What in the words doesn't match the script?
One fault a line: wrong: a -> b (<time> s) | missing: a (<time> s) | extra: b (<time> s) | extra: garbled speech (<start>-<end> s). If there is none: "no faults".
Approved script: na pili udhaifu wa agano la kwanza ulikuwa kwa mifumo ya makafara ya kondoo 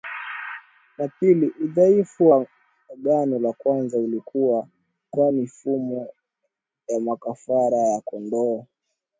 no faults